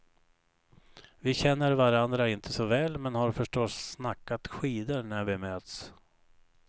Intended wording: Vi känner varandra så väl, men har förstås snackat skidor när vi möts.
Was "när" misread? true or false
false